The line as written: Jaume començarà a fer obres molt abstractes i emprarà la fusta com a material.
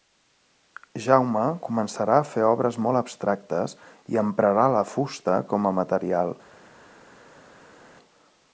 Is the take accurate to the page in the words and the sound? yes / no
yes